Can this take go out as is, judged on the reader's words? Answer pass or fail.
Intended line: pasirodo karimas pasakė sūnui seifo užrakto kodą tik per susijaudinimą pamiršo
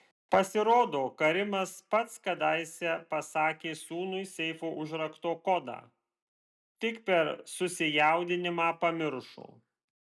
fail